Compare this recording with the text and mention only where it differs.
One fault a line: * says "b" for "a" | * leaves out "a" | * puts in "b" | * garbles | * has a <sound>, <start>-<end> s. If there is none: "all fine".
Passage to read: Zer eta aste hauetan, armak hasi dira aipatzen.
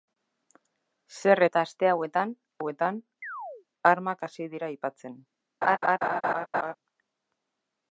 * puts in "hauetan"
* has a chirp, 3.2-3.7 s
* has a laugh, 5.6-6.8 s